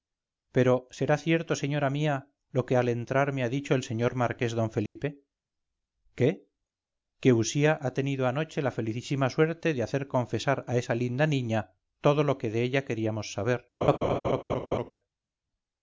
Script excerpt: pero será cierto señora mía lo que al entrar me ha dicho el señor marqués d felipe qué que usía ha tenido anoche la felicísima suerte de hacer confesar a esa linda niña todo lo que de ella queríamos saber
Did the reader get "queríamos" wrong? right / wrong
right